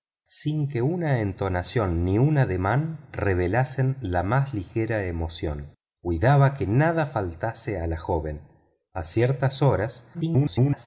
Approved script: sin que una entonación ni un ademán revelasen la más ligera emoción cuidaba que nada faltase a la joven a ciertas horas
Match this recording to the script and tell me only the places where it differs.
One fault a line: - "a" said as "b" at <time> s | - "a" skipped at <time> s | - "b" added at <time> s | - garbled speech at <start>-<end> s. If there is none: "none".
- garbled speech at 10.1-10.9 s